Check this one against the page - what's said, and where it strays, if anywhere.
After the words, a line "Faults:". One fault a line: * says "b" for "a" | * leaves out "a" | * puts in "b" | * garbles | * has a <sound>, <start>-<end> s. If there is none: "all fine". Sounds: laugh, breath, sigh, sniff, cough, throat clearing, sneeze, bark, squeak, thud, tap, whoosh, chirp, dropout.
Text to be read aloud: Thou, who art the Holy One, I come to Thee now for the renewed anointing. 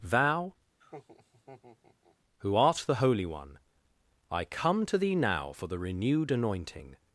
Thou, who art the Holy One, I come to Thee now for the renewed anointing.
Faults:
* has a laugh, 0.8-2.2 s